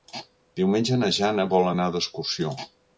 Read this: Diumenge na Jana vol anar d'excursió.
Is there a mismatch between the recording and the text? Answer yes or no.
no